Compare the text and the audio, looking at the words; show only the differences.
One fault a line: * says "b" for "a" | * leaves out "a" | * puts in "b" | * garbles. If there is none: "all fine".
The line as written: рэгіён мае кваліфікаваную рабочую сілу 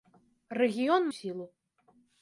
* leaves out "мае кваліфікаваную рабочую"